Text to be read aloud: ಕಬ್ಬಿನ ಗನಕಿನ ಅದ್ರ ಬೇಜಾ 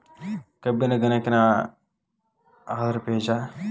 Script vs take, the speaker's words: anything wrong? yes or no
no